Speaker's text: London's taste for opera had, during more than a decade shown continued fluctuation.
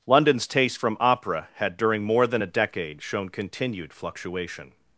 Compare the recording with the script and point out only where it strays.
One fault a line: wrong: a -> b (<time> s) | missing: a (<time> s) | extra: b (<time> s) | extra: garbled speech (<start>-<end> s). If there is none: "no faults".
wrong: for -> from (0.8 s)